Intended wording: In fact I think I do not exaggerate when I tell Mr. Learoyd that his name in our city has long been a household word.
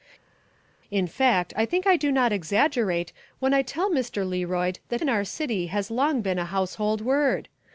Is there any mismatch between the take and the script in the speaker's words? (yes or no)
yes